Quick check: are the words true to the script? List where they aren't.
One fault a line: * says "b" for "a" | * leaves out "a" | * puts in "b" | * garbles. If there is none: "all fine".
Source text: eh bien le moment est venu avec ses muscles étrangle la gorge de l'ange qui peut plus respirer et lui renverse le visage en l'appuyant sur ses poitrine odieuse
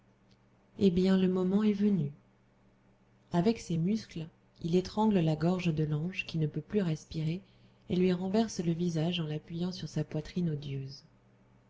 * puts in "il"
* puts in "ne"
* says "sa" for "ses"